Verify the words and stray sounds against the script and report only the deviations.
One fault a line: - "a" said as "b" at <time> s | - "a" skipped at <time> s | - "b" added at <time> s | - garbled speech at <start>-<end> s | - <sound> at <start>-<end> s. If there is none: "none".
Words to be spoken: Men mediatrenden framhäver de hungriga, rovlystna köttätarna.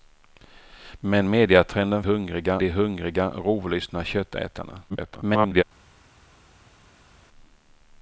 - "framhäver" said as "hungriga" at 2.0 s
- garbled speech at 4.9-5.6 s